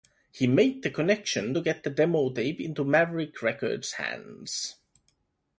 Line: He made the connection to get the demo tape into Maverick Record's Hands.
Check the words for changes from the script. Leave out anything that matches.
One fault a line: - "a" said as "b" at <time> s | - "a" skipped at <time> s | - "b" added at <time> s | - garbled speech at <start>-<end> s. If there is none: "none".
none